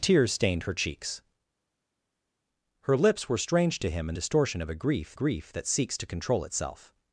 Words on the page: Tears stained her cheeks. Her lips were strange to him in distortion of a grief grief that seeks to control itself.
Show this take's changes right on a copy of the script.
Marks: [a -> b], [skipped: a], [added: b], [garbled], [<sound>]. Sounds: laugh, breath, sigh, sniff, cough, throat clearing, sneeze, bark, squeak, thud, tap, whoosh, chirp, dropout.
Tears stained her cheeks. Her lips were strange to him in distortion of a grief grief that seeks to control itself.